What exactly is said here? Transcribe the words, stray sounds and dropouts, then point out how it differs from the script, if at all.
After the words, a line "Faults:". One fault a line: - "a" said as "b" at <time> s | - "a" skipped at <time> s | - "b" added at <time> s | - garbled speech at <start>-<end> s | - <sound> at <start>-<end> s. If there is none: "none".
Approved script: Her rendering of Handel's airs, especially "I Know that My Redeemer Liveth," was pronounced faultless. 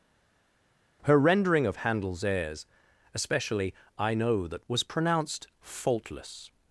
Her rendering of Handel's airs, especially "I Know that," Was pronounced faultless.
Faults:
- "My Redeemer Liveth" skipped at 4.7 s